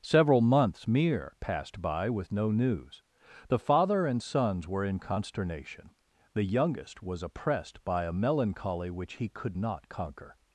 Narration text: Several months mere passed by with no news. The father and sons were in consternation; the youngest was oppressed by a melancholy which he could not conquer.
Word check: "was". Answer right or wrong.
right